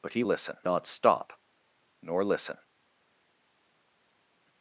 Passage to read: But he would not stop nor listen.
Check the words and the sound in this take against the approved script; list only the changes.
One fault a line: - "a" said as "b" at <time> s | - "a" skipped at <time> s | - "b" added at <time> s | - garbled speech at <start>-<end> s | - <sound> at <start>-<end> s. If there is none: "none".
- "would" said as "listen" at 0.2 s